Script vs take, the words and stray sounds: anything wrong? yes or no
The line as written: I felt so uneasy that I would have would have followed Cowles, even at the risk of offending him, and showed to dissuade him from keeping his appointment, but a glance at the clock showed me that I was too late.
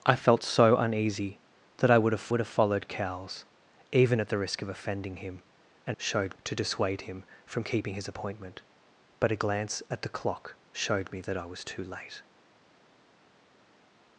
no